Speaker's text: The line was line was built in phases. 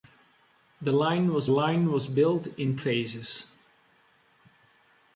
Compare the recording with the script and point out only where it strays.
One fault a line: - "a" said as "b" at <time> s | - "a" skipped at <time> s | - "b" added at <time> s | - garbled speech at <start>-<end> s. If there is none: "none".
none